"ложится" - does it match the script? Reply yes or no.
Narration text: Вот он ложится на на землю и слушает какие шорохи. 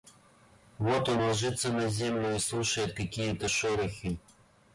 yes